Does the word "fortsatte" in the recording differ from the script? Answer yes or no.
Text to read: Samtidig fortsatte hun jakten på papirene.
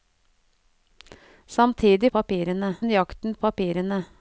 yes